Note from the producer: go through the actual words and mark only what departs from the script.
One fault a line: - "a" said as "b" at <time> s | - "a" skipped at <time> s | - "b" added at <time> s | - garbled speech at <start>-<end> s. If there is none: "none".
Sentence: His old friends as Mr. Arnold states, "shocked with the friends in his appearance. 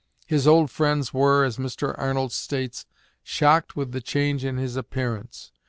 - "were" added at 1.1 s
- "friends" said as "change" at 4.0 s